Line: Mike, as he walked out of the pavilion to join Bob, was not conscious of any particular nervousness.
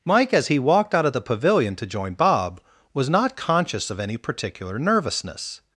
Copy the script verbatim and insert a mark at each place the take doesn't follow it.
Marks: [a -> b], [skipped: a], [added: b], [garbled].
Mike, as he walked out of the pavilion to join Bob, was not conscious of any particular nervousness.